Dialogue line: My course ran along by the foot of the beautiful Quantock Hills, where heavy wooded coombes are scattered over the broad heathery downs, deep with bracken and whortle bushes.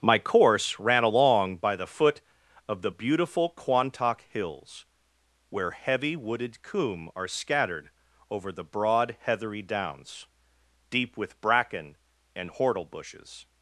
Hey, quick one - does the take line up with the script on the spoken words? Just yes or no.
no